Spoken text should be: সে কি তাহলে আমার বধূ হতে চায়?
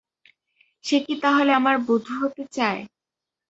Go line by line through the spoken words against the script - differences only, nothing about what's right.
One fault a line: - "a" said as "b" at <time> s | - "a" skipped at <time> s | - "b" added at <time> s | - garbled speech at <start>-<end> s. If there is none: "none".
none